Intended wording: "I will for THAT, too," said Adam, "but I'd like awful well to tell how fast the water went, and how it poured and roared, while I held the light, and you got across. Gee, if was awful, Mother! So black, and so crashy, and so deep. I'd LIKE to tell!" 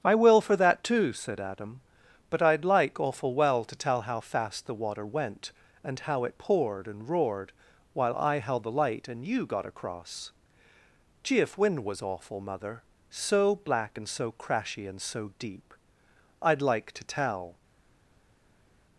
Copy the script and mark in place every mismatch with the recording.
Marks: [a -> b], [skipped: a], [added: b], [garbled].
"I will for THAT, too," said Adam, "but I'd like awful well to tell how fast the water went, and how it poured and roared, while I held the light, and you got across. Gee, if [added: wind] was awful, Mother! So black, and so crashy, and so deep. I'd LIKE to tell!"